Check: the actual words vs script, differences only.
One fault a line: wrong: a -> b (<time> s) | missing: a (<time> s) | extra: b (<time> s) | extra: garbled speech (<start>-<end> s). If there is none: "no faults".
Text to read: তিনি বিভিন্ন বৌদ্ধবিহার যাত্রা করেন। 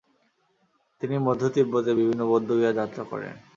extra: মধ্য তিব্বতের (1.2 s)